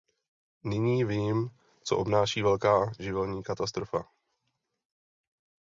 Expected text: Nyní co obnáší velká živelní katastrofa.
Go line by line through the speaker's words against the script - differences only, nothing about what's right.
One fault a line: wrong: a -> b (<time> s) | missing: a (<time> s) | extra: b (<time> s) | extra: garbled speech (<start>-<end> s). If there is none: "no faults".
extra: vím (1.0 s)